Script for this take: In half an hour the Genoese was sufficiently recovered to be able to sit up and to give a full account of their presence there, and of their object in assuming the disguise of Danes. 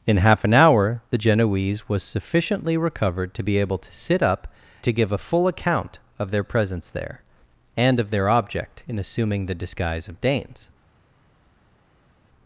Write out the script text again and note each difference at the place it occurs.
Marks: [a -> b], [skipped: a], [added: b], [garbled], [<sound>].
In half an hour the Genoese was sufficiently recovered to be able to sit up [skipped: and] to give a full account of their presence there, and of their object in assuming the disguise of Danes.